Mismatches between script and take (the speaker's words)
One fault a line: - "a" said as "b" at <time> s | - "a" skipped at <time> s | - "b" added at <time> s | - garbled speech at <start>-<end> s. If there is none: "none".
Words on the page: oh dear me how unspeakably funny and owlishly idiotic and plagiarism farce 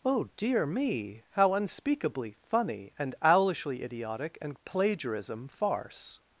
none